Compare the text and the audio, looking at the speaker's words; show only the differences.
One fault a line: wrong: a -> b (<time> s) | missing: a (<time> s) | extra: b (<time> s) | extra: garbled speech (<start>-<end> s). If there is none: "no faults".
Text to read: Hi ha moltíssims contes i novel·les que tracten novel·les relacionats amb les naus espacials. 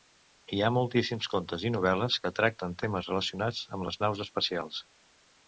wrong: novel·les -> temes (2.9 s)